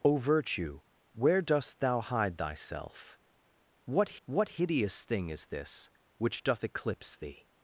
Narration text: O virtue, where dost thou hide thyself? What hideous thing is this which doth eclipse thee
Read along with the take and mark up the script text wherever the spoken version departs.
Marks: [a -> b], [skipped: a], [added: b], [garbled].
O virtue, where dost thou hide thyself? What [added: what] hideous thing is this which doth eclipse thee